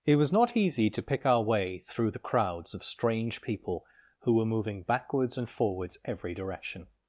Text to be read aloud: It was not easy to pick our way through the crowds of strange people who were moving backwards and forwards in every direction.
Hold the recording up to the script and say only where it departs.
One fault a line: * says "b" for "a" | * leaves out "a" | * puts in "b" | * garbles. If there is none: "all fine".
* leaves out "in"